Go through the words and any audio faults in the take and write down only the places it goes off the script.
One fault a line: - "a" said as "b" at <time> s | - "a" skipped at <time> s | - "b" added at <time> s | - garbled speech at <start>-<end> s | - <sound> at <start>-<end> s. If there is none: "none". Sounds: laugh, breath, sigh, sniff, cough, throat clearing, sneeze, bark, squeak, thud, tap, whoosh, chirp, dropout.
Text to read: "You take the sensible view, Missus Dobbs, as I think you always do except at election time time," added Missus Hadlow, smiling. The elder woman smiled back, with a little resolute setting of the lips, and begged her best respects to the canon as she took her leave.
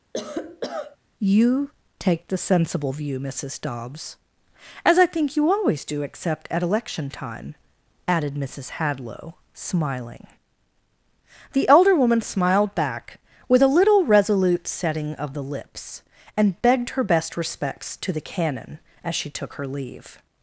- cough at 0.1-1.0 s
- "time" skipped at 7.6 s